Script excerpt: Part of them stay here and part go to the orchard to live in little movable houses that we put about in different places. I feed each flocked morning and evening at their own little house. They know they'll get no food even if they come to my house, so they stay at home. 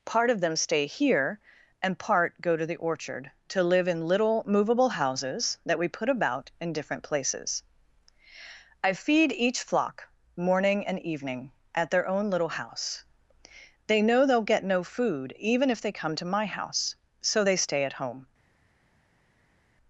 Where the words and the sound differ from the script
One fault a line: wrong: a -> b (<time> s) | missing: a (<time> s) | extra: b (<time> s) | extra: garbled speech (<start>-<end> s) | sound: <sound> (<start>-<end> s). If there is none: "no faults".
wrong: flocked -> flock (9.6 s)